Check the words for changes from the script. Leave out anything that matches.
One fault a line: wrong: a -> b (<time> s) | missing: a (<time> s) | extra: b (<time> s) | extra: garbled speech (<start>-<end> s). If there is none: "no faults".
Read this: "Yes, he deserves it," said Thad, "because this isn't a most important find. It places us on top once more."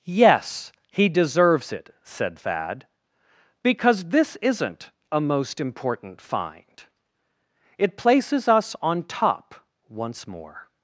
no faults